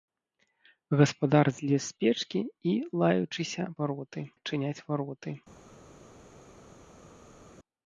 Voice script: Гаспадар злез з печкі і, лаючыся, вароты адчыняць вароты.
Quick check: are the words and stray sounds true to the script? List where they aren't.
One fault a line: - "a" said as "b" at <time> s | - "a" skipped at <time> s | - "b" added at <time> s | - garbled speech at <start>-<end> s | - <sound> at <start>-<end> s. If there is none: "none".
none